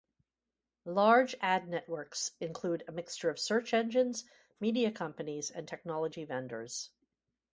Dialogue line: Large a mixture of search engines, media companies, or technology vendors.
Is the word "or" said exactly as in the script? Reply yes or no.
no